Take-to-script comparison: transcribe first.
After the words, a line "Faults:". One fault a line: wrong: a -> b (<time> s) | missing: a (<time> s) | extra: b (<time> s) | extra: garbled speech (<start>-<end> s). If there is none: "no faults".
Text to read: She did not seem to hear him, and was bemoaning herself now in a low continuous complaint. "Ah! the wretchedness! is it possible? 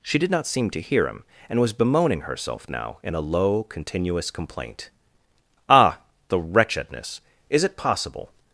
She did not seem to hear him, and was bemoaning herself now in a low continuous complaint. "Ah! the wretchedness! is it possible?
Faults:
no faults